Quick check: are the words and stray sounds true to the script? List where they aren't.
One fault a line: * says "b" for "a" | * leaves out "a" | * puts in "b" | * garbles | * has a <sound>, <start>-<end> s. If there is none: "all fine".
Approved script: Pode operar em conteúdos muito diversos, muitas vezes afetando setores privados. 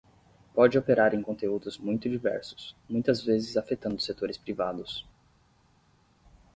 all fine